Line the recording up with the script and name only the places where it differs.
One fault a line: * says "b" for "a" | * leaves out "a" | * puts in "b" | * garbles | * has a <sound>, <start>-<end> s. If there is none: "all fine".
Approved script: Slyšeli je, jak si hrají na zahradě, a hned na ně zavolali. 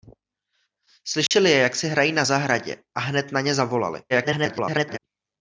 * has a dropout, 1.3-1.3 s
* garbles